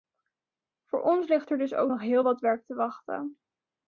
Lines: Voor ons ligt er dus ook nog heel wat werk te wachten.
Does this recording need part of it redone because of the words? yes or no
no